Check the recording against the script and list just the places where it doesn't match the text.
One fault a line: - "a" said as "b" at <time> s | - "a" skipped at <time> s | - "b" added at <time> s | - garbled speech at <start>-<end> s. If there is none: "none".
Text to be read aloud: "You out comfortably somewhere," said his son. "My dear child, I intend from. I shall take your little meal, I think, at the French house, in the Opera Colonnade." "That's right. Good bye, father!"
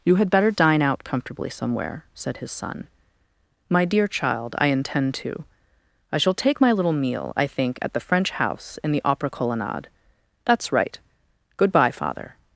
- "had better dine" added at 0.1 s
- "from" said as "to" at 5.2 s
- "your" said as "my" at 6.6 s